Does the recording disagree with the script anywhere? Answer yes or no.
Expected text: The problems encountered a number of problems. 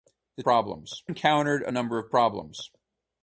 no